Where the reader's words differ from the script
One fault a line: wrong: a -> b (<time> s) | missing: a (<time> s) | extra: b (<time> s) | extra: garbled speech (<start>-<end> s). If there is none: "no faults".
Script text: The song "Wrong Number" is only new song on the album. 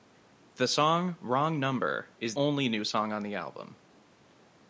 no faults